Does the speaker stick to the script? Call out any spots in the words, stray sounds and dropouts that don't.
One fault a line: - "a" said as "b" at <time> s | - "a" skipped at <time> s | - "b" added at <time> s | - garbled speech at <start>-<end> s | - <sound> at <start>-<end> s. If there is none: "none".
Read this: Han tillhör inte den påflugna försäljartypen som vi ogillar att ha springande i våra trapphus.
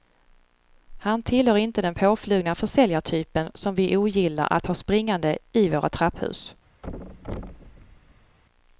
- thud at 6.8-8.4 s